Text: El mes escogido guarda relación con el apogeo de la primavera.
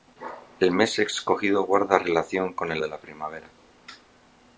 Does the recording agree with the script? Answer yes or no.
no